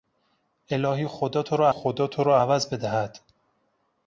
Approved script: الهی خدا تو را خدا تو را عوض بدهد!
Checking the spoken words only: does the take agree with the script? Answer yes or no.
yes